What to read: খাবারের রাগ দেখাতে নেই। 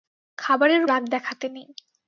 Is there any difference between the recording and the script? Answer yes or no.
no